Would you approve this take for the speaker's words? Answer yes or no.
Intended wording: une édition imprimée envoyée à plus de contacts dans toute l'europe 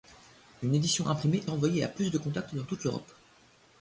yes